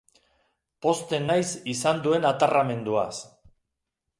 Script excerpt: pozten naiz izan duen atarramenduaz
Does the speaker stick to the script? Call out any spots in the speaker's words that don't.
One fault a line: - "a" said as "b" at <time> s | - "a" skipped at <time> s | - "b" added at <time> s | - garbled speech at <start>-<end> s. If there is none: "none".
none